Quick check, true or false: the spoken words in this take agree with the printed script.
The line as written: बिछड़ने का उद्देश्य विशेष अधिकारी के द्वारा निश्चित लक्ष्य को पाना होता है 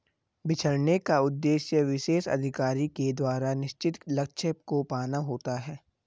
true